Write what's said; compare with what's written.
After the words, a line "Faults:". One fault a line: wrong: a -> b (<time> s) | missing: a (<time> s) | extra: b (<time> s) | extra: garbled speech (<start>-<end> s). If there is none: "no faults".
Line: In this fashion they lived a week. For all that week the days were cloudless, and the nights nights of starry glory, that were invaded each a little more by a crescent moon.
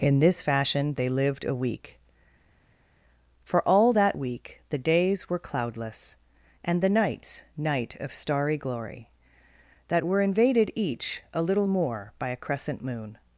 In this fashion they lived a week. For all that week the days were cloudless, and the nights night of starry glory, that were invaded each a little more by a crescent moon.
Faults:
wrong: nights -> night (7.5 s)